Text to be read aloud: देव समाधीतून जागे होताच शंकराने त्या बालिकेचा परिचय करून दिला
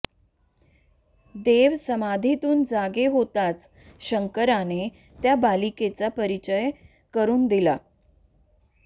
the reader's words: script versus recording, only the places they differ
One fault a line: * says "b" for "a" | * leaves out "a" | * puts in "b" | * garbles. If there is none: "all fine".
all fine